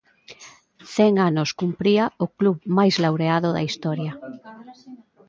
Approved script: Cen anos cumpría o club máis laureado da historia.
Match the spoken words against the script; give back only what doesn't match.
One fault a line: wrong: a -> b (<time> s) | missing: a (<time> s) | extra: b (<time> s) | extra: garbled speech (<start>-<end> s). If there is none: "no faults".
no faults